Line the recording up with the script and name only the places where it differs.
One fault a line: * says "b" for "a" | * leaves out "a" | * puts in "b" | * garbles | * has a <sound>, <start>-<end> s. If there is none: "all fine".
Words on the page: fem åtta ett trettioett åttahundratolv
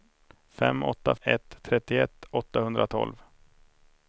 all fine